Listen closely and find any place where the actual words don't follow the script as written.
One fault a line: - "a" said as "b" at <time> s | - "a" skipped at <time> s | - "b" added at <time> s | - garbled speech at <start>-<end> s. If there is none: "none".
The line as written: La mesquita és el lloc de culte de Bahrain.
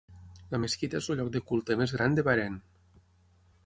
- "més gran" added at 1.8 s